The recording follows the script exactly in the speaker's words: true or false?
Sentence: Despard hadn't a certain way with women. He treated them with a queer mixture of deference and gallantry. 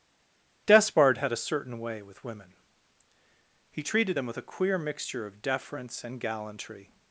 false